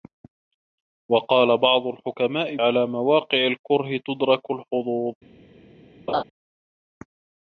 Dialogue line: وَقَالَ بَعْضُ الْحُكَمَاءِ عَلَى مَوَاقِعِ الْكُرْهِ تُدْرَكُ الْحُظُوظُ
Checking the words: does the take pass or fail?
pass